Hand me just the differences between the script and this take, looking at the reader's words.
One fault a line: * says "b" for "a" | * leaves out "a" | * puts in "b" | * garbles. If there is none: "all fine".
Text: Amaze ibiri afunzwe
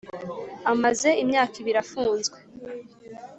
* puts in "imyaka"